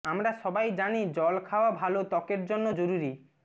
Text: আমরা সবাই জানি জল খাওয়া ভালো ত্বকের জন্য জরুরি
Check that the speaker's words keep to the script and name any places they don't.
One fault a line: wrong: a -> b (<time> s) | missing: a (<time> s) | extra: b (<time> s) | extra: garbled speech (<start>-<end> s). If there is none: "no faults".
no faults